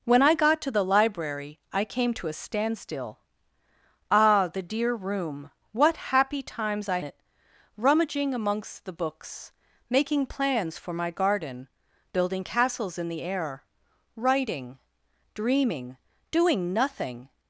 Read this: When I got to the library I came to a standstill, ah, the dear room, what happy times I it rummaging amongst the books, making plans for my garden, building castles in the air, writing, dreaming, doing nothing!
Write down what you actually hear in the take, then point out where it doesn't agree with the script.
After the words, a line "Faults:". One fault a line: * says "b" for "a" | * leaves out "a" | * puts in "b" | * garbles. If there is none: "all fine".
When I got to the library I came to a standstill, ah, the dear room, what happy times I it rummaging amongst the books, making plans for my garden, building castles in the air, writing, dreaming, doing nothing!
Faults:
all fine